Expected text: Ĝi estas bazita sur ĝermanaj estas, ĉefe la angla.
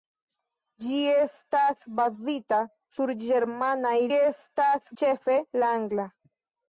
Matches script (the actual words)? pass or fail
pass